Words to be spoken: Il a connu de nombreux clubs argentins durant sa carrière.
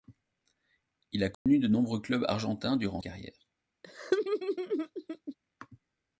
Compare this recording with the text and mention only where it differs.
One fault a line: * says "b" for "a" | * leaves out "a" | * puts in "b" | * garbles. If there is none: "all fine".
* leaves out "sa"